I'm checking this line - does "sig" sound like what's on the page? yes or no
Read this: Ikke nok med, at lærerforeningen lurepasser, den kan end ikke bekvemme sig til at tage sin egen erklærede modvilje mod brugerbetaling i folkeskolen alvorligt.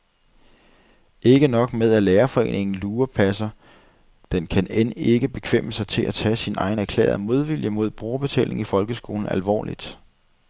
yes